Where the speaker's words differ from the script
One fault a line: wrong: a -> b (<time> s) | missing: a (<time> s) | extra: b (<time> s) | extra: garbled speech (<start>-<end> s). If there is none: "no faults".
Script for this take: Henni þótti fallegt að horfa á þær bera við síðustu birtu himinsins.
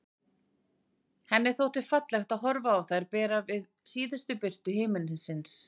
no faults